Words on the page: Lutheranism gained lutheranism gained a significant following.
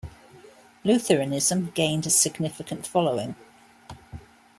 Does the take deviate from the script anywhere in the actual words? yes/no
yes